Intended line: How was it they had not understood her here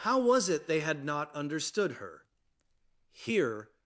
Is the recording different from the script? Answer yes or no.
no